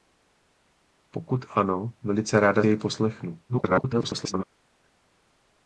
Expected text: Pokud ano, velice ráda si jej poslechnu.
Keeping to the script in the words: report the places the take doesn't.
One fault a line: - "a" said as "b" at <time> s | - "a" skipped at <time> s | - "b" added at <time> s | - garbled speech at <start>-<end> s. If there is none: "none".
- "si" skipped at 2.6 s
- garbled speech at 3.5-4.4 s